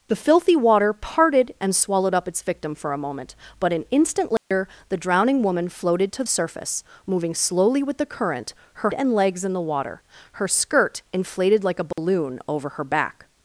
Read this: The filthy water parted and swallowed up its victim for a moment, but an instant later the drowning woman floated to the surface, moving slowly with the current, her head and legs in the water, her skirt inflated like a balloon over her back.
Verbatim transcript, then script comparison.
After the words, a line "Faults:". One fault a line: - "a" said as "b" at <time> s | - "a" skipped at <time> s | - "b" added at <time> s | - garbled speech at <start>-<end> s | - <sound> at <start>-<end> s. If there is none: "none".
The filthy water parted and swallowed up its victim for a moment, but an instant later the drowning woman floated to surface, moving slowly with the current, her and legs in the water, her skirt inflated like a balloon over her back.
Faults:
- dropout at 4.4-4.5 s
- "the" skipped at 6.2 s
- "head" skipped at 8.9 s
- dropout at 11.9-12.0 s